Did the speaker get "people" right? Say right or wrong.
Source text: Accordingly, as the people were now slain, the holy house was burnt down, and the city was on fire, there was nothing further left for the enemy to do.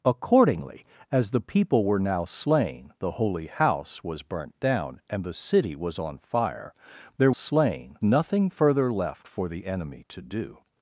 right